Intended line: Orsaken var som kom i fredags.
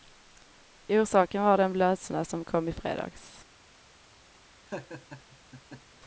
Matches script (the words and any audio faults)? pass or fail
fail